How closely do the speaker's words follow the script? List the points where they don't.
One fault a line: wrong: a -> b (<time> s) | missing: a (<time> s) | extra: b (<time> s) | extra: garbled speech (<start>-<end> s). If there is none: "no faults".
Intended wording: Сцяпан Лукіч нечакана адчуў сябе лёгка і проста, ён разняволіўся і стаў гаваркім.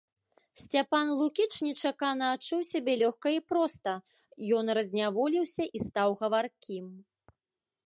no faults